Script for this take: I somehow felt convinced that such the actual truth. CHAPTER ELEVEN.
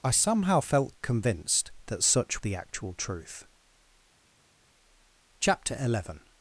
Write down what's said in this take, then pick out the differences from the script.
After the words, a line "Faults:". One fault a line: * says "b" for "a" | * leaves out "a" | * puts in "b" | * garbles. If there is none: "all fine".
I somehow felt convinced that such the actual truth. CHAPTER ELEVEN.
Faults:
all fine